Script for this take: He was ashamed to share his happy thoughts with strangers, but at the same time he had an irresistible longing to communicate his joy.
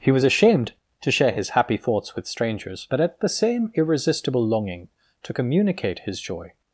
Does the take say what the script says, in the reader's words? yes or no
no